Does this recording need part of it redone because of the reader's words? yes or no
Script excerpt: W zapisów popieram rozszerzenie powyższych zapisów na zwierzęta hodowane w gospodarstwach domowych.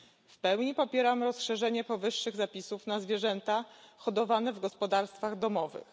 yes